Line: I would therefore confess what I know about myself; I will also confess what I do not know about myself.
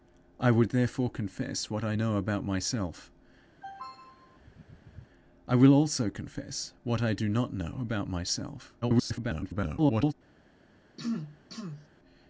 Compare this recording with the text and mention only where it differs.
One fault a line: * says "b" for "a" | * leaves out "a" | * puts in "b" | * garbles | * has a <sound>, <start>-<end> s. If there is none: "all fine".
* has a throat clearing, 3.6-5.1 s
* garbles
* has a throat clearing, 11.0-11.9 s